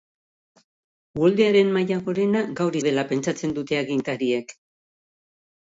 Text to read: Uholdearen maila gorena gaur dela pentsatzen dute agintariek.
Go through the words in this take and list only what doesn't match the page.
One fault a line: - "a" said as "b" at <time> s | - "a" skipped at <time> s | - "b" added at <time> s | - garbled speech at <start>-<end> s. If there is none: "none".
none